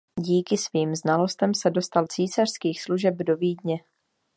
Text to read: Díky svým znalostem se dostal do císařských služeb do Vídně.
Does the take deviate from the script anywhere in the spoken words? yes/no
yes